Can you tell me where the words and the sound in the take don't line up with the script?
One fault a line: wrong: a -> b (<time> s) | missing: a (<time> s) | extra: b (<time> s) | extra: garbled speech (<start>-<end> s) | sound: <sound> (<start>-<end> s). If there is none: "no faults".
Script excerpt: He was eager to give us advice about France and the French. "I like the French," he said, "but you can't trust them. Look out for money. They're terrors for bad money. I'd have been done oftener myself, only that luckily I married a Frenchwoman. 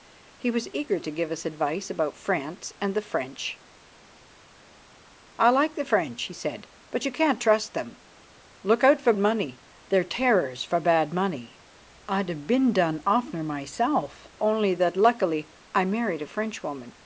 no faults